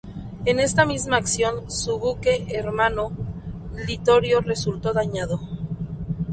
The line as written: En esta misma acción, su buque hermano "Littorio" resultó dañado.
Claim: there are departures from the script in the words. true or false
false